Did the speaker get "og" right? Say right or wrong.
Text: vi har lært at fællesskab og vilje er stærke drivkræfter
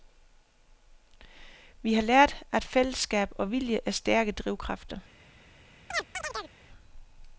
right